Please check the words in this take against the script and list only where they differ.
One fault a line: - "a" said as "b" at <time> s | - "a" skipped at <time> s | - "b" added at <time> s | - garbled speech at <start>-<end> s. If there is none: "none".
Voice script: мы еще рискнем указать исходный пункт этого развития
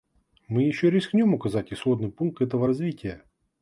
none